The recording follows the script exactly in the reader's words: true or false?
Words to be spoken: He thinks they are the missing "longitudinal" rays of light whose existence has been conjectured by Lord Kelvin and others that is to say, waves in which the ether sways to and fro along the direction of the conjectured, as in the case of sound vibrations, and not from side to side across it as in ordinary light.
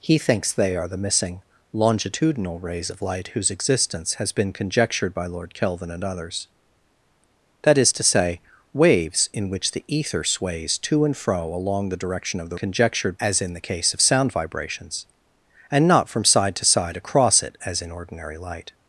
true